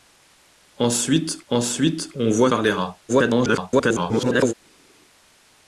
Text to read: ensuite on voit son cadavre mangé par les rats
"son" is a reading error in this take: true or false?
true